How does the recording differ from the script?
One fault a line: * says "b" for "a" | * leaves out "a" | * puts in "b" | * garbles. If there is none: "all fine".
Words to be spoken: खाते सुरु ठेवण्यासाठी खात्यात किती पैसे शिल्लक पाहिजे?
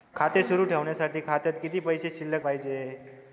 all fine